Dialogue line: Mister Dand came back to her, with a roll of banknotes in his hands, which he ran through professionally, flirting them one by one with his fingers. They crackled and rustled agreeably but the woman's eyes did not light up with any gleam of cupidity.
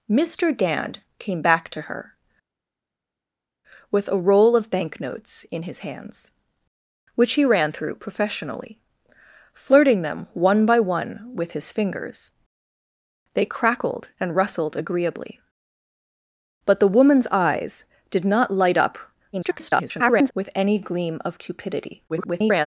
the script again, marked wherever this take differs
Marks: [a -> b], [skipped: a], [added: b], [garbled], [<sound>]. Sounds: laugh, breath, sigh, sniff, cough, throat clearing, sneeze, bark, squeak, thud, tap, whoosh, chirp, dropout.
Mister Dand came back to her, with a roll of banknotes in his hands, which he ran through professionally, flirting them one by one with his fingers. They crackled and rustled agreeably but the woman's eyes did not light up [garbled] with any gleam of cupidity. [garbled]